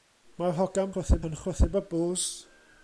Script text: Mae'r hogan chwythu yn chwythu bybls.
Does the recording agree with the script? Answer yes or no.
yes